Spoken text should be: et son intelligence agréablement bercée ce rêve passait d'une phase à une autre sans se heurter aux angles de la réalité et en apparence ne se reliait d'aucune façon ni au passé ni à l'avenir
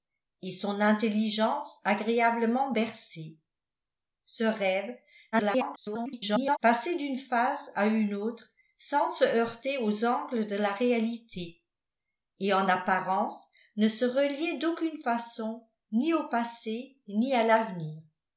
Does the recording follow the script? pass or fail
fail